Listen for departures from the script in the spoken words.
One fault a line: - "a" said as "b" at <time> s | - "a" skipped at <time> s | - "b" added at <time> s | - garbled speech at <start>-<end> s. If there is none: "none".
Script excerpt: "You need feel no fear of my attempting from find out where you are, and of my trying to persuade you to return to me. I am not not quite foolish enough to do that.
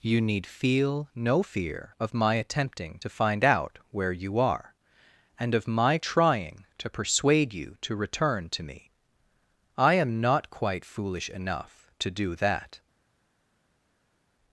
- "from" said as "to" at 3.0 s
- "not" skipped at 10.5 s